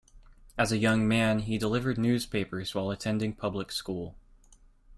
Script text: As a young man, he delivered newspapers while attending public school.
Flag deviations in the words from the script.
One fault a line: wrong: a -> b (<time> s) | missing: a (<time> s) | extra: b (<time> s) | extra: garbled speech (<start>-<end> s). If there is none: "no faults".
no faults